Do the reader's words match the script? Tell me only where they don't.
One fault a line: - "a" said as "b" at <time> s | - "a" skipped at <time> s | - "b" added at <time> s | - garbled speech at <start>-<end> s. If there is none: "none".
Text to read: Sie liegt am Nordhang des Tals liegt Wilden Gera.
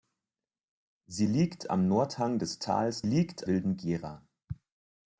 none